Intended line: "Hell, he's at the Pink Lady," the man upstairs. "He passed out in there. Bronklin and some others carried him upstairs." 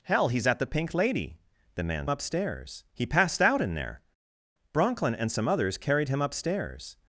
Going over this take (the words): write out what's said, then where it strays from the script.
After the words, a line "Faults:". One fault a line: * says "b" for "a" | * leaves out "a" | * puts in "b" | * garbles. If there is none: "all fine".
"Hell, he's at the Pink Lady," the man upstairs. "He passed out in there. Bronklin and some others carried him upstairs."
Faults:
all fine